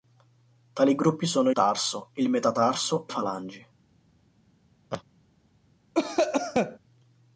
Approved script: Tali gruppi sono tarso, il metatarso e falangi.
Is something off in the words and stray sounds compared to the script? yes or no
yes